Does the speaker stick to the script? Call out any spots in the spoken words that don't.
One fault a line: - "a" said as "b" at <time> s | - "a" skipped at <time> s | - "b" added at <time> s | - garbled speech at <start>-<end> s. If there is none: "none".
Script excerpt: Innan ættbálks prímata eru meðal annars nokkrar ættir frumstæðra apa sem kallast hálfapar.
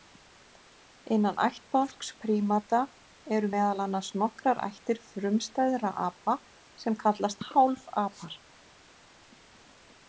none